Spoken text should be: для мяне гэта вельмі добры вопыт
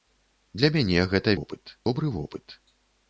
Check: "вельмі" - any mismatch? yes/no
yes